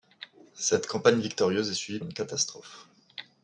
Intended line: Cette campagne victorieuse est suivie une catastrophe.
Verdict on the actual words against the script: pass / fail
pass